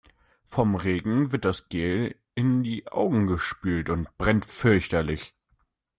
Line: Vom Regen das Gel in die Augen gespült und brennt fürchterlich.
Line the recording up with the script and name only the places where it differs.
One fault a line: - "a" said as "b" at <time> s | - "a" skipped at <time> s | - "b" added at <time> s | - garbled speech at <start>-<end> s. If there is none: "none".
- "wird" added at 1.3 s